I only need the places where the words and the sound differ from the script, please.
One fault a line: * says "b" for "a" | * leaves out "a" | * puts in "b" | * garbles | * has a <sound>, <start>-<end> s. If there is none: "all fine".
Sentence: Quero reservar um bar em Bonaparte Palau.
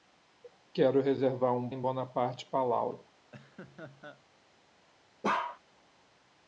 * leaves out "bar"
* has a laugh, 3.3-4.2 s
* has a bark, 5.2-5.6 s